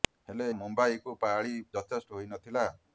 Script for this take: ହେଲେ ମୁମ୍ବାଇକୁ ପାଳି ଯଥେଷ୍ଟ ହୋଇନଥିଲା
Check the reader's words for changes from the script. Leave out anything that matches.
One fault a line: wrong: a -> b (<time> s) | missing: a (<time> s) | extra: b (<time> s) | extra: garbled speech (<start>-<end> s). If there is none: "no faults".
no faults